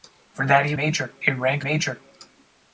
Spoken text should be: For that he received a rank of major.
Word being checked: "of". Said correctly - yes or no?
no